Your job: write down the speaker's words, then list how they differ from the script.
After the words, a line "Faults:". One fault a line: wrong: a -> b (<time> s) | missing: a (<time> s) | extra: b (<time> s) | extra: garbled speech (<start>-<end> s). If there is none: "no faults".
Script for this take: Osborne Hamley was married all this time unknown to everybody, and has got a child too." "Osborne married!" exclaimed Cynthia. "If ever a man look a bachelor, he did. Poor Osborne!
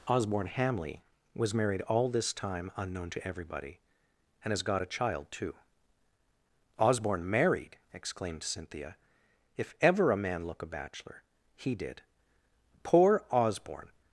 Osborne Hamley was married all this time unknown to everybody, and has got a child too." "Osborne married!" exclaimed Cynthia. "If ever a man look a bachelor, he did. Poor Osborne!
Faults:
no faults